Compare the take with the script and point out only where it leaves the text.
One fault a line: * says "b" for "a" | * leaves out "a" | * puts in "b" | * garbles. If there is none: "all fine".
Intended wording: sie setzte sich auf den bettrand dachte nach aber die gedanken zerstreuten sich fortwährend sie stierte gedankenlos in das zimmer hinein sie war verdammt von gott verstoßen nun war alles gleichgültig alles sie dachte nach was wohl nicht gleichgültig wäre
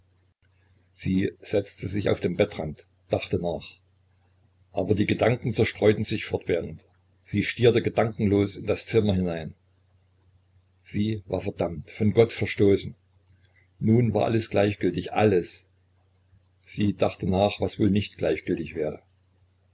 all fine